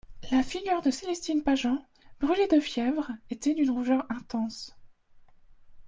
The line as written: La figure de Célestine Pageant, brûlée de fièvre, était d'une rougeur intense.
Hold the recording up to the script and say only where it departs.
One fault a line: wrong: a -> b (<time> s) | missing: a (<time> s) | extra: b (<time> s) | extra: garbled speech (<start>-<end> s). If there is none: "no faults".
no faults